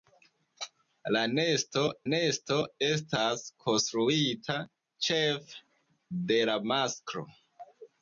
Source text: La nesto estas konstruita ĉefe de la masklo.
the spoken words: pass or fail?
fail